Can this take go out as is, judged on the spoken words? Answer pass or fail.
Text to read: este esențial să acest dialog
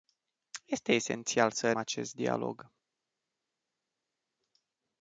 pass